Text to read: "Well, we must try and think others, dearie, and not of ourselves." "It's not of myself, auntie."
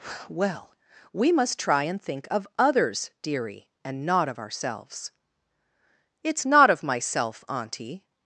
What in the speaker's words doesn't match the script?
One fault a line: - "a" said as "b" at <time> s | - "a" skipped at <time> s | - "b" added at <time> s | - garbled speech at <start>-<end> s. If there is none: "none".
- "of" added at 2.3 s